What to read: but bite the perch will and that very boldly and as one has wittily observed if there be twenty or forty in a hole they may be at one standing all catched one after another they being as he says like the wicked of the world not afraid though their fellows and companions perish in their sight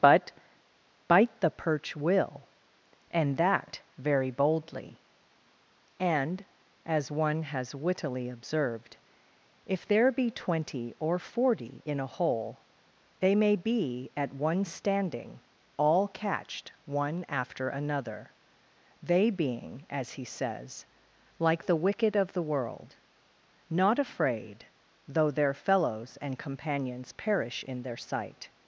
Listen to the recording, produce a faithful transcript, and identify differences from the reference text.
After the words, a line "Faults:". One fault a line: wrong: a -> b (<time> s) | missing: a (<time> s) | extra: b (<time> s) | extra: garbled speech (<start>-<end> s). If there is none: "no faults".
but bite the perch will and that very boldly and as one has wittily observed if there be twenty or forty in a hole they may be at one standing all catched one after another they being as he says like the wicked of the world not afraid though their fellows and companions perish in their sight
Faults:
no faults